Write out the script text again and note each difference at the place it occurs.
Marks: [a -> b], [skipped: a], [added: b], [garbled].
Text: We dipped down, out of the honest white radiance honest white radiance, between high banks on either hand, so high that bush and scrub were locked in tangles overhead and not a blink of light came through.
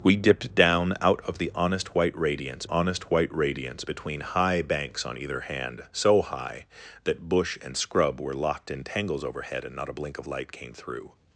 We dipped down, out of the honest white radiance honest white radiance, between high banks on either hand, so high that bush and scrub were locked in tangles overhead and not a blink of light came through.